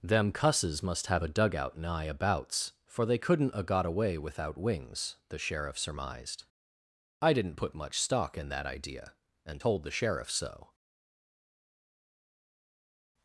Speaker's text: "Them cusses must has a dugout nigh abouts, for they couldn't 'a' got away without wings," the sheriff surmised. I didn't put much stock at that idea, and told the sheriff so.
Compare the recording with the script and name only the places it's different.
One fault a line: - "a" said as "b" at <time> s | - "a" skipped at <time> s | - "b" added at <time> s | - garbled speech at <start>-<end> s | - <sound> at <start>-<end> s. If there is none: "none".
- "has" said as "have" at 1.1 s
- "at" said as "in" at 8.4 s